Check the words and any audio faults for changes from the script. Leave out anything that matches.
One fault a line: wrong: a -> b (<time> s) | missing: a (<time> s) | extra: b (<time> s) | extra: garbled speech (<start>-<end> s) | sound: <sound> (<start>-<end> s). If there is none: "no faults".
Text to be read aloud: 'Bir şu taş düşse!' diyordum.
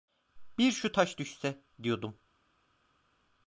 no faults